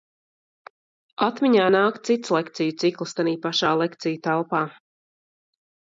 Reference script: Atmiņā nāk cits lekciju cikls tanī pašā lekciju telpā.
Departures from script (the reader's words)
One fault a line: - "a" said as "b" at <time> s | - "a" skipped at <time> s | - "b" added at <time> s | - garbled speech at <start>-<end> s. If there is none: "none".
none